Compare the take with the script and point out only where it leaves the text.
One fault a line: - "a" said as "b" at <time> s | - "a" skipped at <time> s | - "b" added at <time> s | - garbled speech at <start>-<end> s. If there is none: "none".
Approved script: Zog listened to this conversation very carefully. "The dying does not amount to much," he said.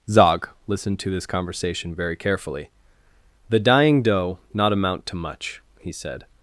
- "does" said as "doe" at 4.0 s